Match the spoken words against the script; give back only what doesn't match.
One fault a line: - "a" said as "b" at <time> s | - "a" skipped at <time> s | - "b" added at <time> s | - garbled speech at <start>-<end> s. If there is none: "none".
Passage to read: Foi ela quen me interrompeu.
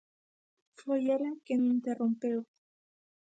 none